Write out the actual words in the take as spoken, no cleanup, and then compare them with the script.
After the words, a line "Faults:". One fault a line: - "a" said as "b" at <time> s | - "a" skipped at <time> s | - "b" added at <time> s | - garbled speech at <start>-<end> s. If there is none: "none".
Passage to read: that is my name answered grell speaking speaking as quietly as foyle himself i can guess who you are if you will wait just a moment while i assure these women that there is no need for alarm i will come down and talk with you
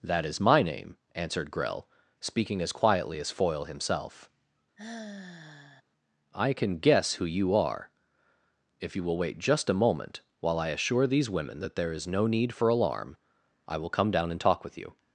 that is my name answered grell speaking as quietly as foyle himself i can guess who you are if you will wait just a moment while i assure these women that there is no need for alarm i will come down and talk with you
Faults:
- "speaking" skipped at 2.6 s